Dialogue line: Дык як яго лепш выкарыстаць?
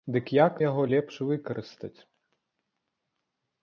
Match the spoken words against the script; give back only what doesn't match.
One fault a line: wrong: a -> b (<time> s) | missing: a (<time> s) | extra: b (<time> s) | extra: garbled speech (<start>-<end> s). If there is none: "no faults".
no faults